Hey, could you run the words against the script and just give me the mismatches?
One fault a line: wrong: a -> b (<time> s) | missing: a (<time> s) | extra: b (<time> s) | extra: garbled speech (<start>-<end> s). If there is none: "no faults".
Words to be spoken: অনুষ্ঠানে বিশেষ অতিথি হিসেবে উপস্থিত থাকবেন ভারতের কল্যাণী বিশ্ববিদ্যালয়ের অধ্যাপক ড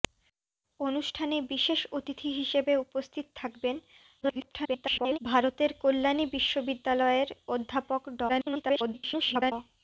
extra: garbled speech (4.2-5.2 s)
extra: garbled speech (8.3-9.5 s)